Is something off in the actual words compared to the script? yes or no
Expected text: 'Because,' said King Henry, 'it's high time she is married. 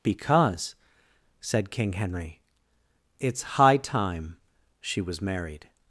yes